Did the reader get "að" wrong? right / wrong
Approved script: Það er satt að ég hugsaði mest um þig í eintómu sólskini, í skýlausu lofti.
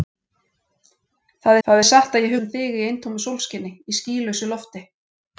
right